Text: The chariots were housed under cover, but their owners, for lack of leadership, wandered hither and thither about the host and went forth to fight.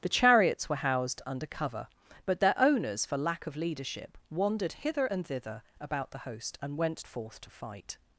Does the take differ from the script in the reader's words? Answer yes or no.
no